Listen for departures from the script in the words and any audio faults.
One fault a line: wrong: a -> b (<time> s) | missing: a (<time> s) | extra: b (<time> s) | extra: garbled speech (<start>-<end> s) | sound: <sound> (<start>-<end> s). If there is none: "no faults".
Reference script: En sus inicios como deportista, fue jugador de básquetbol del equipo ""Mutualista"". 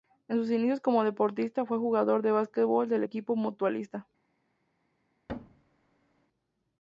sound: thud (5.3-6.3 s)